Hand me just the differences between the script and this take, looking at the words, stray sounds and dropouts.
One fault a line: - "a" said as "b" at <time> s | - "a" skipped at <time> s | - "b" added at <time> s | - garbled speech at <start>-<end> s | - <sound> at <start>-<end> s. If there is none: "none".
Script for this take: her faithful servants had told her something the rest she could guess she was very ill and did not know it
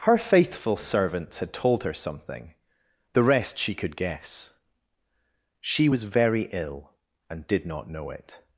none